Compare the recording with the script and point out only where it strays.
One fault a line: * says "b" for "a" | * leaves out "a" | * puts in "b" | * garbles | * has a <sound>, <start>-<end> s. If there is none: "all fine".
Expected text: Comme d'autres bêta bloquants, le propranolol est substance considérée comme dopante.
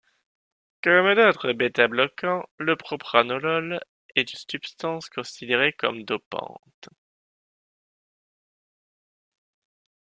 all fine